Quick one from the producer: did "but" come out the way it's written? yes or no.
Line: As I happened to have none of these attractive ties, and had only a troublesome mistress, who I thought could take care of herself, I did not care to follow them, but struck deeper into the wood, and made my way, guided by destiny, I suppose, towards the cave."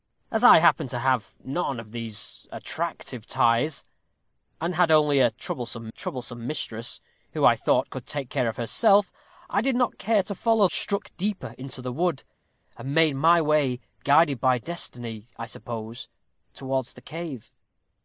no